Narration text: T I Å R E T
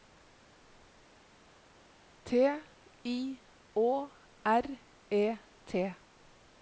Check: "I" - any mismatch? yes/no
no